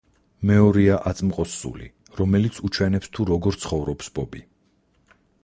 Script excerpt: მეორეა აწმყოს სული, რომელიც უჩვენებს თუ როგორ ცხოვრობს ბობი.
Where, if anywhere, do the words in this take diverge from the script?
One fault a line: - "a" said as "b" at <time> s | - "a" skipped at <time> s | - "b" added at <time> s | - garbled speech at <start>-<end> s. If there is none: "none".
none